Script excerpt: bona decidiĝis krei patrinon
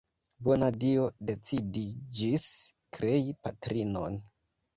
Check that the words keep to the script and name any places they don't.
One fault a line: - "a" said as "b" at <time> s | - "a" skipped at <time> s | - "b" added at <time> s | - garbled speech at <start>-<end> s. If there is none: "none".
- "dio" added at 0.8 s